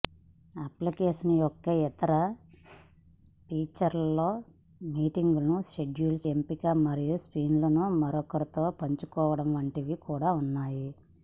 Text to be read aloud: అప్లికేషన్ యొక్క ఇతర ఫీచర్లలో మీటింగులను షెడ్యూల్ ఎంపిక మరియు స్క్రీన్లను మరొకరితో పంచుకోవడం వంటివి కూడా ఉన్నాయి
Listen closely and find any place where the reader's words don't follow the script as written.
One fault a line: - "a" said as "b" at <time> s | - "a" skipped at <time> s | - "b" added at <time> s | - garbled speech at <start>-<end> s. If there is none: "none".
none